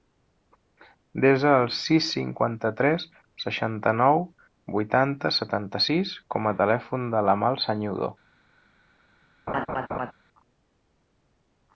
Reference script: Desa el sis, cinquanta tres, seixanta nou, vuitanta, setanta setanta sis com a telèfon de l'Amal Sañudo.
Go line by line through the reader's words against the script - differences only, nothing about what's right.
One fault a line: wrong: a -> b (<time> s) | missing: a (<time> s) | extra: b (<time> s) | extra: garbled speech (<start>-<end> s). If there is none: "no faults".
missing: setanta (5.8 s)